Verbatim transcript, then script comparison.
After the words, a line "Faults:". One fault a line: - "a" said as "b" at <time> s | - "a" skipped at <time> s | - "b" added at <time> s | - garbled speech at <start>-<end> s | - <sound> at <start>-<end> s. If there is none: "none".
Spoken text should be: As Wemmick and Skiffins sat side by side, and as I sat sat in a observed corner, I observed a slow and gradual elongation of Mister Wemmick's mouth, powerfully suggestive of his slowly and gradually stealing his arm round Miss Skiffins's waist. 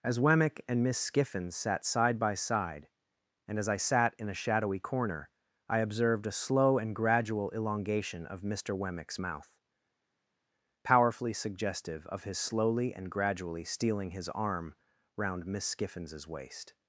As Wemmick and Miss Skiffins sat side by side, and as I sat in a shadowy corner, I observed a slow and gradual elongation of Mister Wemmick's mouth, powerfully suggestive of his slowly and gradually stealing his arm round Miss Skiffins's waist.
Faults:
- "Miss" added at 0.8 s
- "sat" skipped at 4.2 s
- "observed" said as "shadowy" at 4.4 s